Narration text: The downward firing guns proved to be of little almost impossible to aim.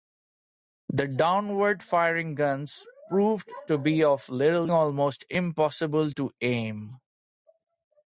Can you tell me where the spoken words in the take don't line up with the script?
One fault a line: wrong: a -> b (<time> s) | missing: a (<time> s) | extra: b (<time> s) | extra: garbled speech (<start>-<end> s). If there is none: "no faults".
no faults